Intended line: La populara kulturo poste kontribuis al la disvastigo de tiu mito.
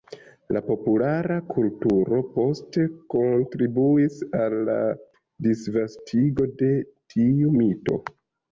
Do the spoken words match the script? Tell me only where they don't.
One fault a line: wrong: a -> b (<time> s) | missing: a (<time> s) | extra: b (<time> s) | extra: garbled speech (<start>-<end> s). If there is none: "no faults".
no faults